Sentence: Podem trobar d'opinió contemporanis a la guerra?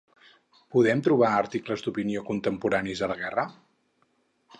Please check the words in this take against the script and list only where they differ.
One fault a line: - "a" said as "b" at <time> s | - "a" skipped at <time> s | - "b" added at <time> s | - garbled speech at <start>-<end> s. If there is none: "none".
- "articles" added at 1.4 s